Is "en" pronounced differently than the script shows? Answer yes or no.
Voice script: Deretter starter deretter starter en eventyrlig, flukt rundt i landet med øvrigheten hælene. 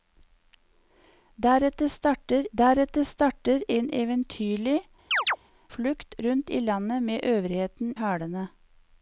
no